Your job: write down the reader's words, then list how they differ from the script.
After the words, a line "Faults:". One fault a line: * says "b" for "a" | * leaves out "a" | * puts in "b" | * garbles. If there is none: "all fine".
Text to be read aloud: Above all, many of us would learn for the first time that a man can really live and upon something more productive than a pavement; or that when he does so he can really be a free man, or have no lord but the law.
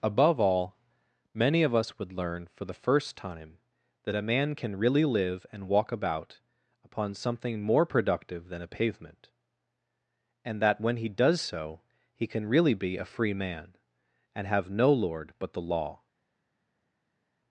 Above all, many of us would learn for the first time that a man can really live and walk about upon something more productive than a pavement; and that when he does so he can really be a free man, and have no lord but the law.
Faults:
* puts in "walk about"
* says "and" for "or"
* says "and" for "or"